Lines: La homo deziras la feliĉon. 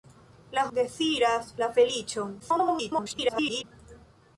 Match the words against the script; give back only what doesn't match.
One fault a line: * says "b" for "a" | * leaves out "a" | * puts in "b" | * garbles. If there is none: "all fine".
* leaves out "homo"
* garbles